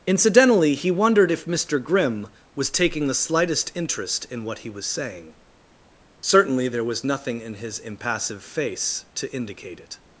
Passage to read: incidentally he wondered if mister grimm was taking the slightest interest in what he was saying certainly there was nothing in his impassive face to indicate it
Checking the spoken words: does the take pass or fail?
pass